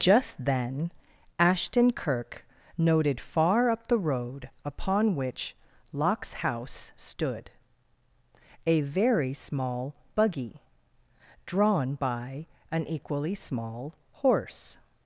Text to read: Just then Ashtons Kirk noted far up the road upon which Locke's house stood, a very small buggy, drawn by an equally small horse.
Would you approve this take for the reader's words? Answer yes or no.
no